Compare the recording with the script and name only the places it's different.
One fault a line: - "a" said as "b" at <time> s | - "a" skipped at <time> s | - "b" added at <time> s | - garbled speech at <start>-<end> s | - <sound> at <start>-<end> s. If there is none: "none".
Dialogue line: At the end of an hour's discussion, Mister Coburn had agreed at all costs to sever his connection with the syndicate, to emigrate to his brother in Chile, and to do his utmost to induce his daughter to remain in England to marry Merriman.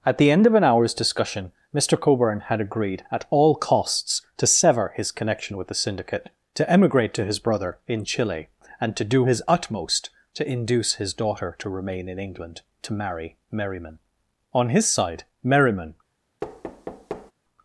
- "On his side Merriman" added at 14.5 s
- thud at 16.4-17.3 s